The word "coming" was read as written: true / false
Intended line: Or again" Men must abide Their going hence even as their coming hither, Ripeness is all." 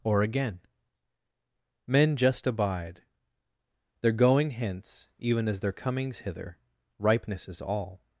false